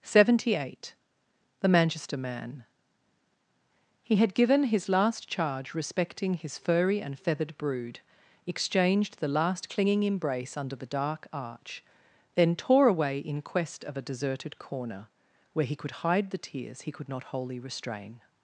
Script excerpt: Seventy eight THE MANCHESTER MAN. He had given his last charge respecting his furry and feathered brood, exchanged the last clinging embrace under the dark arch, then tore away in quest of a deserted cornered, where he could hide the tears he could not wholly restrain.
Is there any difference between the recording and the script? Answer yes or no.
yes